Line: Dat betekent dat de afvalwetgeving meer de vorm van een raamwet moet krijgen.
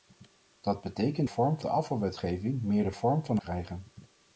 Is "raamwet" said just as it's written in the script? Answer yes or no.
no